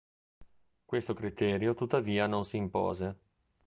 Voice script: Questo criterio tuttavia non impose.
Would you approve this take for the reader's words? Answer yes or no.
no